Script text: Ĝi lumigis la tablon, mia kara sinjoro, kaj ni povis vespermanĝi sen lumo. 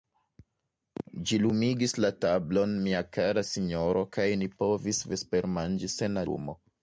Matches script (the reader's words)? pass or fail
pass